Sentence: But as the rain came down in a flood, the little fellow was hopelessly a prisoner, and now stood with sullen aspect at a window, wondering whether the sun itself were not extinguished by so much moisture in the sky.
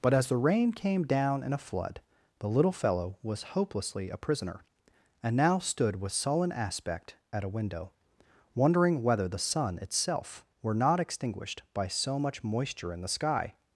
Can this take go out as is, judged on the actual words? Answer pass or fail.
pass